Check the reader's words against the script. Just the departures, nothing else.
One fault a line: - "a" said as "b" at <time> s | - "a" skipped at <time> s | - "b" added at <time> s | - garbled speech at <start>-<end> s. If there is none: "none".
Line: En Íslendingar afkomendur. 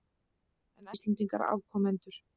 none